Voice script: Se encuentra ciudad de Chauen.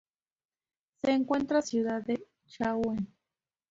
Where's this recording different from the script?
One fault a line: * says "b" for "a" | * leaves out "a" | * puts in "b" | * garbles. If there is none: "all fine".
all fine